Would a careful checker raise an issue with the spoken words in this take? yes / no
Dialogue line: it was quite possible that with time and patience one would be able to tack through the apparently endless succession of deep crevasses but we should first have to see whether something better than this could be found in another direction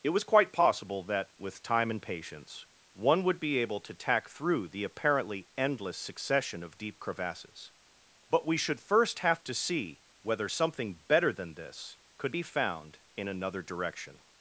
no